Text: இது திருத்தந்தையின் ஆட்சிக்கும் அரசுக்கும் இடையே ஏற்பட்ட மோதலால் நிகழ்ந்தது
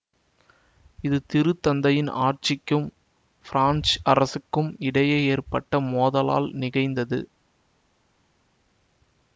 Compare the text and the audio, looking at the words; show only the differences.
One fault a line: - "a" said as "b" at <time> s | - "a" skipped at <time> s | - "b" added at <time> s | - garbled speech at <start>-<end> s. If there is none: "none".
- "பிரான்சு" added at 3.5 s